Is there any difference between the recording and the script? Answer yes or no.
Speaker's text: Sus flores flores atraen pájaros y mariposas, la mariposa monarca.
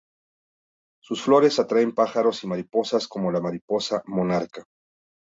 yes